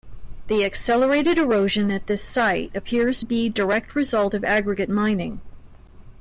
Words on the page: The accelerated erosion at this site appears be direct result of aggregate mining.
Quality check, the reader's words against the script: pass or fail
pass